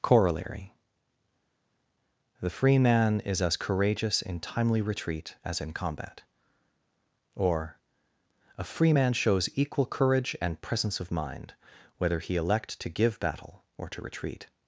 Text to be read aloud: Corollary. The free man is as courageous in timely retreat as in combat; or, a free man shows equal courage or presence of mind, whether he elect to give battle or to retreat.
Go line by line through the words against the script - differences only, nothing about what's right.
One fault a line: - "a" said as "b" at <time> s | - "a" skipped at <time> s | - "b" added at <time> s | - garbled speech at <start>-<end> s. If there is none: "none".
- "or" said as "and" at 10.4 s